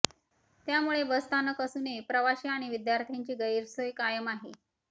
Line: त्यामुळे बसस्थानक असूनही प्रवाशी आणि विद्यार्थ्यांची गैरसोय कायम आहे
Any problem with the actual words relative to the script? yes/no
no